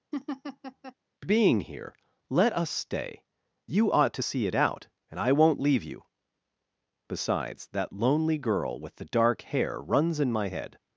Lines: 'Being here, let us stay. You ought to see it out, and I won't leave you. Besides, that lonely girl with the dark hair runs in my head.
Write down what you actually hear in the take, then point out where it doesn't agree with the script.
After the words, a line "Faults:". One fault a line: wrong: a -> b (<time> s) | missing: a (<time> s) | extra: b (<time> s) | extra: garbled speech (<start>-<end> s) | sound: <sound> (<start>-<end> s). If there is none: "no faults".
'Being here, let us stay. You ought to see it out, and I won't leave you. Besides, that lonely girl with the dark hair runs in my head.
Faults:
sound: laugh (0.1-0.9 s)